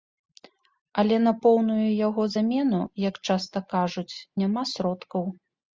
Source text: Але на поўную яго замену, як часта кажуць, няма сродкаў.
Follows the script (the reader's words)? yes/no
yes